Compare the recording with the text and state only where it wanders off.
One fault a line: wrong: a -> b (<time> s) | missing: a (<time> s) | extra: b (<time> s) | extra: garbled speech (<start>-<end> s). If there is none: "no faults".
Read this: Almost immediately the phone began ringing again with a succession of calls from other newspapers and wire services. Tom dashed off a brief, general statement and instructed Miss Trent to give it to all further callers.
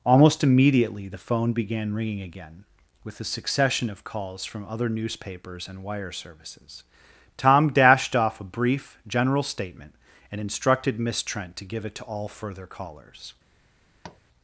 no faults